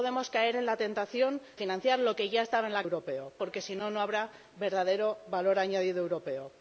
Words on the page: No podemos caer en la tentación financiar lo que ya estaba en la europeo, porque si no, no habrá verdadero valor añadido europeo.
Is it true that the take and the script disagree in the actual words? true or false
false